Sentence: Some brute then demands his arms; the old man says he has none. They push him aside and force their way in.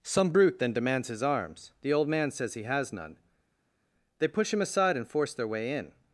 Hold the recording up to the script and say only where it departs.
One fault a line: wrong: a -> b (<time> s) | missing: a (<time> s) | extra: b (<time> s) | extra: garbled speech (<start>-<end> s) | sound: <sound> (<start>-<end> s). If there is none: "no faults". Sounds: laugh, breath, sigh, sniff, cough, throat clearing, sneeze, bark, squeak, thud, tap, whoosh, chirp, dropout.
no faults